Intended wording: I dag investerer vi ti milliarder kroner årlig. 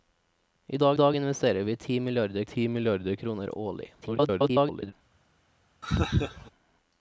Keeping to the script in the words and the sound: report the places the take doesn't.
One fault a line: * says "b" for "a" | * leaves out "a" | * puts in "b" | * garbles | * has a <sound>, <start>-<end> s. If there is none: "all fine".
* puts in "dag"
* puts in "ti milliarder"
* garbles
* has a laugh, 5.8-6.5 s